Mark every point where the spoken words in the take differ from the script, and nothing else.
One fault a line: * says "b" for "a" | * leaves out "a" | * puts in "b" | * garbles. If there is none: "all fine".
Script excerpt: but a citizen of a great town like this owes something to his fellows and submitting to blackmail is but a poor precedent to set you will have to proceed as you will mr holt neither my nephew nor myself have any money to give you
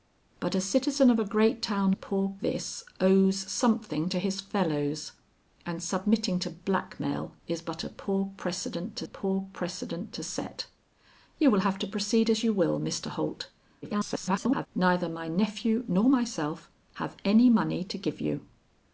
* says "poor" for "like"
* puts in "poor precedent to"
* garbles